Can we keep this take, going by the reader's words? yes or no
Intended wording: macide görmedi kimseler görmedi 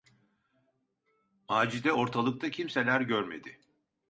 no